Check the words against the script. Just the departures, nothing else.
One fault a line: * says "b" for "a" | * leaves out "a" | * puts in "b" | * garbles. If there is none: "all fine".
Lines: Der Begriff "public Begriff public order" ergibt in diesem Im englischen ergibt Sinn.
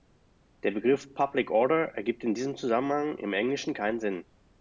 * leaves out "Begriff public"
* puts in "Zusammenhang"
* says "keinen" for "ergibt"